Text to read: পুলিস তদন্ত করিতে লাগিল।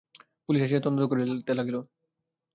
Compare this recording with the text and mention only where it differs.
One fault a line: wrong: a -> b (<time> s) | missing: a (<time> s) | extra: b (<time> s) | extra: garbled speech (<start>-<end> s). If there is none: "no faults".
extra: আসিয়া (0.6 s)